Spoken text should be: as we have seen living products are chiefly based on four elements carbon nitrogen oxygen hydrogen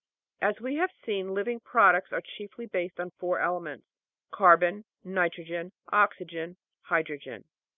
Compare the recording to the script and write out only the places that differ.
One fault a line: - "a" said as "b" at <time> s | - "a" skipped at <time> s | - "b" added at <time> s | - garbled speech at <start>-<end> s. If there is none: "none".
none